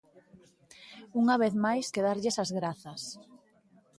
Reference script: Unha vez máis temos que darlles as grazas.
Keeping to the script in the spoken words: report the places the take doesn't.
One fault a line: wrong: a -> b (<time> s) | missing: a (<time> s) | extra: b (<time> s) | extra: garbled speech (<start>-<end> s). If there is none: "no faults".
missing: temos (1.9 s)